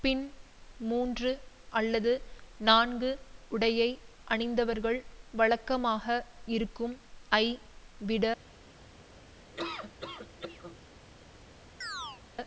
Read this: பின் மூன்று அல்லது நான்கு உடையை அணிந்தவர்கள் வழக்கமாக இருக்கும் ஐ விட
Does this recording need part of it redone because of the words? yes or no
no